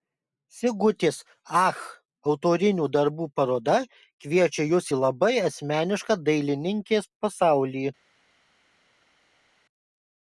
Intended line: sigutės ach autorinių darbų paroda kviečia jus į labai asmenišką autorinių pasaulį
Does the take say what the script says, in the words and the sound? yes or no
no